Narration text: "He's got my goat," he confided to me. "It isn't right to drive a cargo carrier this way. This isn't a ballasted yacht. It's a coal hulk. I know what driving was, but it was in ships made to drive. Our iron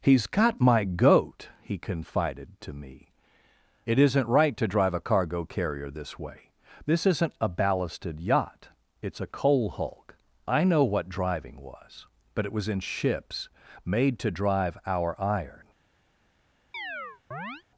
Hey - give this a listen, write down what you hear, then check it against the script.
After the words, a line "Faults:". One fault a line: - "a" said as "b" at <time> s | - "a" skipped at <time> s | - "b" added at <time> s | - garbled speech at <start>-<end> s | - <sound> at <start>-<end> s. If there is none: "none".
"He's got my goat," he confided to me. "It isn't right to drive a cargo carrier this way. This isn't a ballasted yacht. It's a coal hulk. I know what driving was, but it was in ships made to drive. Our iron
Faults:
- chirp at 16.7-17.6 s